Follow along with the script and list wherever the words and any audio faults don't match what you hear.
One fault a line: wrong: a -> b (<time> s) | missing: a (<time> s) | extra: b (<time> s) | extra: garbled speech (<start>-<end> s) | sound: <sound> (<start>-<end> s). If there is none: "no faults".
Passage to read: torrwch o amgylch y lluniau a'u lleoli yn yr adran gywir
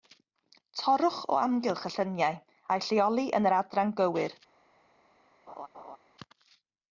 sound: laugh (5.5-6.0 s)